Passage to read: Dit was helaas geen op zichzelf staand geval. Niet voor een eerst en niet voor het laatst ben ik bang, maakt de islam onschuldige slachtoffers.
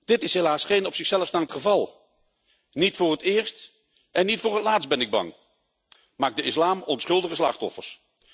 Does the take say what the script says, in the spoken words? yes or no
no